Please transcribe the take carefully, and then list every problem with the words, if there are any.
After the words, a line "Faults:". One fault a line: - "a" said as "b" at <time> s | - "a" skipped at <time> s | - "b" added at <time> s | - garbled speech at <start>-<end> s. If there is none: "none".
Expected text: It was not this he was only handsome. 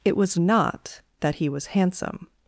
It was not that he was handsome.
Faults:
- "this" said as "that" at 1.2 s
- "only" skipped at 1.8 s